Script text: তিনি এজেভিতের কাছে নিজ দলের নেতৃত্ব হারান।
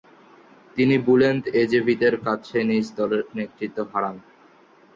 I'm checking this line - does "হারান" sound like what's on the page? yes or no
yes